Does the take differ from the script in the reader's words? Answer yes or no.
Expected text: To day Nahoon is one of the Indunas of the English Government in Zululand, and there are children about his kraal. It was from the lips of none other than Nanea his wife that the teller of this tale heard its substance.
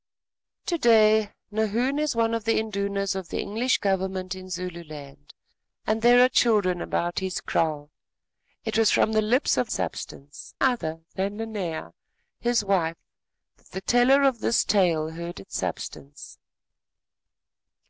yes